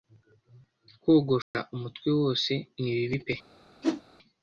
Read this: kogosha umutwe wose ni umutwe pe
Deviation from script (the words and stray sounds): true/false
true